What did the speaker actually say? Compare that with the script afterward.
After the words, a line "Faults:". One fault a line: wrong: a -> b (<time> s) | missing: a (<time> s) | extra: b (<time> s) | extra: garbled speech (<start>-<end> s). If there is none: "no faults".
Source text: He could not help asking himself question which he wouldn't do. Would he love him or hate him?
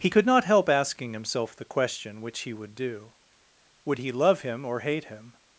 He could not help asking himself the question which he would do. Would he love him or hate him?
Faults:
extra: the (1.5 s)
wrong: wouldn't -> would (2.5 s)